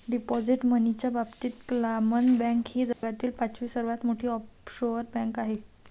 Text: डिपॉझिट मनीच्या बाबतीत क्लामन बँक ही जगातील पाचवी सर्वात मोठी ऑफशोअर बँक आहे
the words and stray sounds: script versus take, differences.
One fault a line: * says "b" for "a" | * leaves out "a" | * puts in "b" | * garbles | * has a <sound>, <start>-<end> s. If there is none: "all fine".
* has a dropout, 2.9-3.0 s